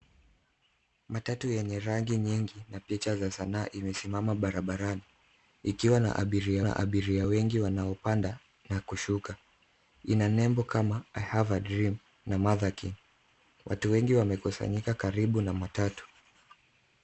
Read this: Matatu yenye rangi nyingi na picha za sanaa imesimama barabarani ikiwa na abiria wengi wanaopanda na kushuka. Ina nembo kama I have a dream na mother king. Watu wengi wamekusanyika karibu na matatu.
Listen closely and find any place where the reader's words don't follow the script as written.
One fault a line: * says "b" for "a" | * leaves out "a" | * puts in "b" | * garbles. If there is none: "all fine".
* puts in "na abiria"